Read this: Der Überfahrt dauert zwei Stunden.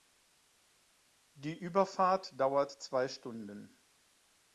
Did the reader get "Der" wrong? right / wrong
wrong